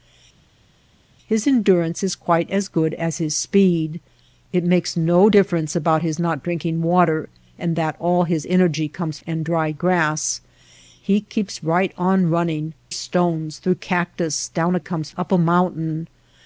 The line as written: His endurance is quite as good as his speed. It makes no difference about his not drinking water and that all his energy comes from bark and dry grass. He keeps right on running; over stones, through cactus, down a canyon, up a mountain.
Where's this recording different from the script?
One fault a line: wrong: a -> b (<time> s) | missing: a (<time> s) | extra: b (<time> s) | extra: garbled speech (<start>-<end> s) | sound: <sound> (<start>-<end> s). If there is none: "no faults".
missing: from bark (9.2 s)
missing: over (12.7 s)
wrong: canyon -> comes (14.8 s)